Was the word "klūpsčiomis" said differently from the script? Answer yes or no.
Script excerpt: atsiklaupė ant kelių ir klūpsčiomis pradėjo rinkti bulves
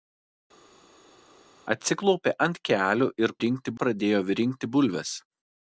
yes